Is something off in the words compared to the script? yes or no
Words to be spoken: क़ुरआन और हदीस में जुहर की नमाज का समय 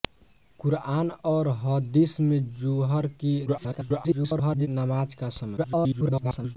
yes